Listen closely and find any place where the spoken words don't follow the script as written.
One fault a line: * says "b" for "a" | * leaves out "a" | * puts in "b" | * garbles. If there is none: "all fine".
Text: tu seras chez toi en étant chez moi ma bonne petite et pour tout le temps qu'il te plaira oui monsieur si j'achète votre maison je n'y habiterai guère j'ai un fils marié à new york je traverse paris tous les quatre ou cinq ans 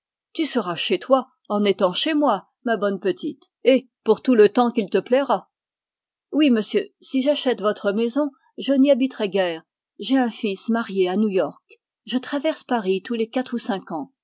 all fine